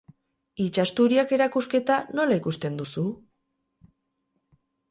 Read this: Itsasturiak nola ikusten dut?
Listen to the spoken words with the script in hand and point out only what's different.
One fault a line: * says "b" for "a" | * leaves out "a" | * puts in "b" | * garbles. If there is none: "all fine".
* puts in "erakusketa"
* says "duzu" for "dut"